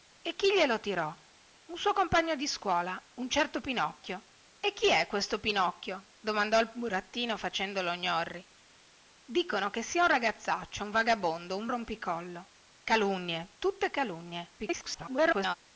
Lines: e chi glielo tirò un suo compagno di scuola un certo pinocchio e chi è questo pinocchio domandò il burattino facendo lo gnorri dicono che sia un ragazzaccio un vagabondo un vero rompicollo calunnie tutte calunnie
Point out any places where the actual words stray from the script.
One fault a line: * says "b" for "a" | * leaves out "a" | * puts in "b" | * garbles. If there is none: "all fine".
* leaves out "vero"
* garbles